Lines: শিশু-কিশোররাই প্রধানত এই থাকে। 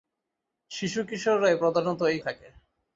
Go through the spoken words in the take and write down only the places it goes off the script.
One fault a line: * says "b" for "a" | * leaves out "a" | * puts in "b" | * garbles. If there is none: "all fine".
all fine